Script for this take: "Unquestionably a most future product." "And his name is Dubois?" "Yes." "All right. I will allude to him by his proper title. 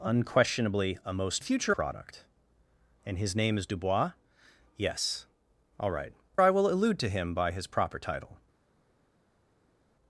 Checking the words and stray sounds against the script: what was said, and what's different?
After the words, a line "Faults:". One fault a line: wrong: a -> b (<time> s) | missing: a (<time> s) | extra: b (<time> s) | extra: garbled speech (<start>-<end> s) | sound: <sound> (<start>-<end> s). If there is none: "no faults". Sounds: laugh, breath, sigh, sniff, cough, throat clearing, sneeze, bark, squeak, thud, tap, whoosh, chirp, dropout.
"Unquestionably a most future product." "And his name is Dubois?" "Yes." "All right. I will allude to him by his proper title.
Faults:
no faults